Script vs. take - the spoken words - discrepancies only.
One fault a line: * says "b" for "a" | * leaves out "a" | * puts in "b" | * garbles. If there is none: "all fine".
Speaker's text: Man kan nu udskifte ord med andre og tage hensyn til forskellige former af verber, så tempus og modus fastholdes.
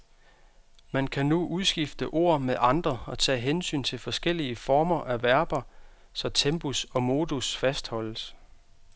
all fine